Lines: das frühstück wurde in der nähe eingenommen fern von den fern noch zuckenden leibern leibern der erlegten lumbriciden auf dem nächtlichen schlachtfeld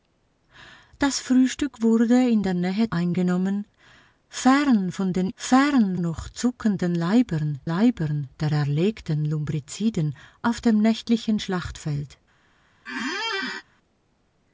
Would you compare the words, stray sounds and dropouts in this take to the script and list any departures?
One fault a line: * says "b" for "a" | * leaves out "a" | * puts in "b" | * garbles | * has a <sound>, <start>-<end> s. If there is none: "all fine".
* has a squeak, 12.9-13.6 s